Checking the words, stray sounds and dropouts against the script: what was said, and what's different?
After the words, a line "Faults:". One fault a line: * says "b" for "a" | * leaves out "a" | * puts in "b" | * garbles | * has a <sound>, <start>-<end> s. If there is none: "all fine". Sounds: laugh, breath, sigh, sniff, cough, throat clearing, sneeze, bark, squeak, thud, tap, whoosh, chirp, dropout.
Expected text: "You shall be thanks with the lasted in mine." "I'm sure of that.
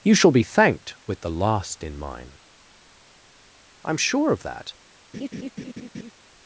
"You shall be thanked with the last in mine." "I'm sure of that.
Faults:
* says "thanked" for "thanks"
* says "last" for "lasted"
* has a laugh, 5.1-6.1 s